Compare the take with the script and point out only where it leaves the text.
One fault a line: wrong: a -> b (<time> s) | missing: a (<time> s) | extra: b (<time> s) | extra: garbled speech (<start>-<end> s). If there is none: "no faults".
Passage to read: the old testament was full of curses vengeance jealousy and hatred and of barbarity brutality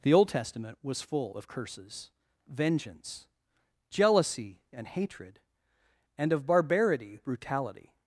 no faults